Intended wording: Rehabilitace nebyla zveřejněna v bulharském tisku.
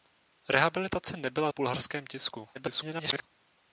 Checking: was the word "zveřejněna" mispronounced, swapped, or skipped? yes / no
yes